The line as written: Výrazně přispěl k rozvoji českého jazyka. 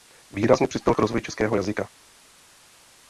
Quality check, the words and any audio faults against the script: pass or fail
pass